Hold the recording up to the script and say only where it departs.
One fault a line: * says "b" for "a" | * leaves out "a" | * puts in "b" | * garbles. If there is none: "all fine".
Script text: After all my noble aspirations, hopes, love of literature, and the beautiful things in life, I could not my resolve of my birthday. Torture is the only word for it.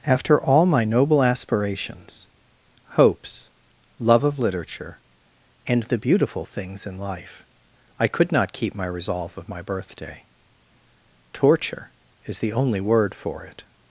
* puts in "keep"